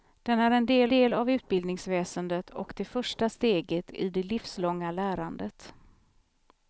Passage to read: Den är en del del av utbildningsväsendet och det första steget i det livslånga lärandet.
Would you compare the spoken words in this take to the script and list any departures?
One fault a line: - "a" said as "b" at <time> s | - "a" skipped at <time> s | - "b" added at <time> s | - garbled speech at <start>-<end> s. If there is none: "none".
none